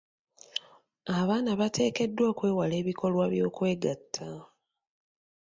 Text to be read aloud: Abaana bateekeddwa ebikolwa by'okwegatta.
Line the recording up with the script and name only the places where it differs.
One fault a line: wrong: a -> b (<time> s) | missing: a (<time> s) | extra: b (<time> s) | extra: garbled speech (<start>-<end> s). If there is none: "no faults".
extra: okwewala (2.3 s)